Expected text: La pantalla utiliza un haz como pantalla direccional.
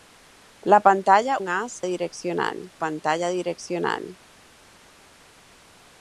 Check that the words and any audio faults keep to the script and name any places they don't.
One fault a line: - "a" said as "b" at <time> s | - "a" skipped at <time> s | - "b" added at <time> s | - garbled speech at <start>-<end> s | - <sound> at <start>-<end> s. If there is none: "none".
- "utiliza" skipped at 1.4 s
- "como" said as "direccional" at 1.8 s